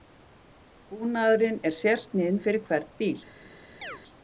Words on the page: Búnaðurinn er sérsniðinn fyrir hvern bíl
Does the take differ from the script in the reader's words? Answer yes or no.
no